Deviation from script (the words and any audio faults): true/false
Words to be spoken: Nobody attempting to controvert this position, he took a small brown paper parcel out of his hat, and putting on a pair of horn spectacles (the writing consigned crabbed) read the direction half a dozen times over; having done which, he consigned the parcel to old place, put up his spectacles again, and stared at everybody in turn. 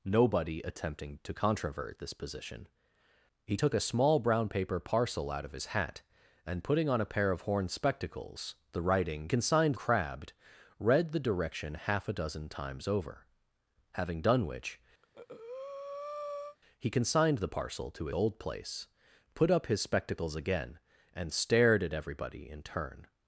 true